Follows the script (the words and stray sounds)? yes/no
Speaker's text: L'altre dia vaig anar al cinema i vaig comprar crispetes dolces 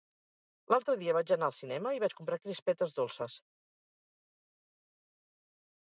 yes